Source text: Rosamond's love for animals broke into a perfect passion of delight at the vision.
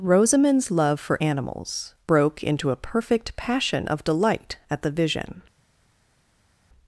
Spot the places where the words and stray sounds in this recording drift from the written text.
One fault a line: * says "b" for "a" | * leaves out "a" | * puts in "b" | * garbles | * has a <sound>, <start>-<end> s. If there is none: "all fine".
all fine